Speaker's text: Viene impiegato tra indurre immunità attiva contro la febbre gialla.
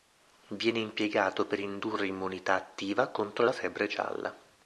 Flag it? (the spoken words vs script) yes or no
yes